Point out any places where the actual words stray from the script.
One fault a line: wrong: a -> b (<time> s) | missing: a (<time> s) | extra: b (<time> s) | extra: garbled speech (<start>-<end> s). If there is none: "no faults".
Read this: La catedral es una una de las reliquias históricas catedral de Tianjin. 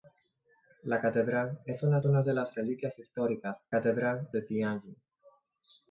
no faults